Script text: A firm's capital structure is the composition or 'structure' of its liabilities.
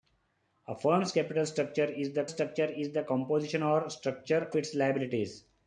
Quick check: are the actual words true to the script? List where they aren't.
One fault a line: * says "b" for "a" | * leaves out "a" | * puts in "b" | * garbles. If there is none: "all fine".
* puts in "structure is the"
* leaves out "of"